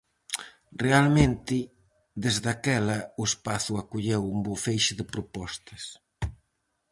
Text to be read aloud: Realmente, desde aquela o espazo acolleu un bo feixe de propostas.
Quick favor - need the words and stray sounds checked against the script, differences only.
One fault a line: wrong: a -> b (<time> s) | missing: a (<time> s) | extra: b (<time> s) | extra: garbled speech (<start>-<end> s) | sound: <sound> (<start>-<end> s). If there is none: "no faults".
no faults